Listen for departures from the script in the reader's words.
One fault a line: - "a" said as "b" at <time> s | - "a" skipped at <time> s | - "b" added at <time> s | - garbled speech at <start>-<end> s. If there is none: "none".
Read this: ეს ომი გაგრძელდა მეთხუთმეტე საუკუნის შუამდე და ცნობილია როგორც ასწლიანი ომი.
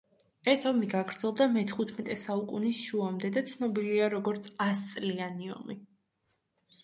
none